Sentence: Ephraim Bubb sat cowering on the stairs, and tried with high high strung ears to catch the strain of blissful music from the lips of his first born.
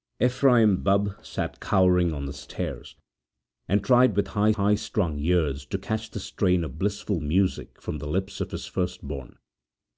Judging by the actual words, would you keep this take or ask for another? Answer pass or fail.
pass